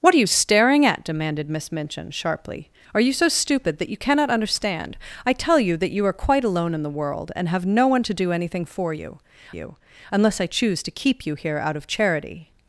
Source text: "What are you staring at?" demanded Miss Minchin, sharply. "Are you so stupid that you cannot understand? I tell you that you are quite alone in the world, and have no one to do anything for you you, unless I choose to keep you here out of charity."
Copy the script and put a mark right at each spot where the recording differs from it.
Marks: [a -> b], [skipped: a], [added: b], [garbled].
"What are you staring at?" demanded Miss Minchin, sharply. "Are you so stupid that you cannot understand? I tell you that you are quite alone in the world, and have no one to do anything for you you, unless I choose to keep you here out of charity."